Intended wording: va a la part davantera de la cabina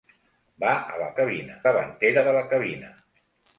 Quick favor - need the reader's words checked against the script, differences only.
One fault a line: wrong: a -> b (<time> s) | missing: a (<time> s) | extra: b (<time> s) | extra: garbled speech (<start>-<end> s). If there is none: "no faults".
wrong: part -> cabina (1.2 s)